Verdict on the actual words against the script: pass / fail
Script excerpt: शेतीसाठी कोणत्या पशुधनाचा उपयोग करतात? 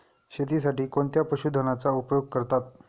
pass